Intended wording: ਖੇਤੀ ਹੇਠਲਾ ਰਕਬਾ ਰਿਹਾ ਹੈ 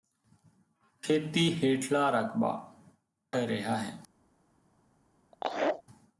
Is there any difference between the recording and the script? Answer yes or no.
no